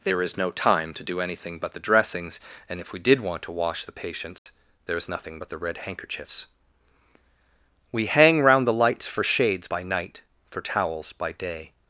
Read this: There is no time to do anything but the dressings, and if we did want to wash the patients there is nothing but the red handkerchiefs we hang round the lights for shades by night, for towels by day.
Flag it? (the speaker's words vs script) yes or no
no